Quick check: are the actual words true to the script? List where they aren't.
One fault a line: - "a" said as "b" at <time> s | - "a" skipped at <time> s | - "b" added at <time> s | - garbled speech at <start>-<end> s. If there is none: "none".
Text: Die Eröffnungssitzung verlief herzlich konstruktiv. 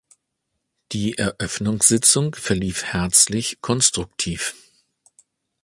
none